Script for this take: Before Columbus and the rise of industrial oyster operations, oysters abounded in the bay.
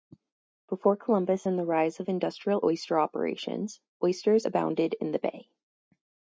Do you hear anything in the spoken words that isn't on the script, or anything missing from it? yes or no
no